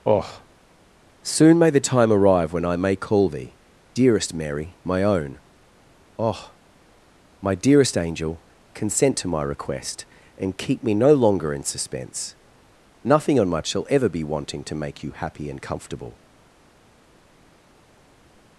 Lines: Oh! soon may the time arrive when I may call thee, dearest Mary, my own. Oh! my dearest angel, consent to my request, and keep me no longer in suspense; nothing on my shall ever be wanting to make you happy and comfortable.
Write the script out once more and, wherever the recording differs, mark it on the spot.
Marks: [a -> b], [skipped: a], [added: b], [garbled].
Oh! soon may the time arrive when I may call thee, dearest Mary, my own. Oh! my dearest angel, consent to my request, and keep me no longer in suspense; nothing on my shall ever be wanting to make you happy and comfortable.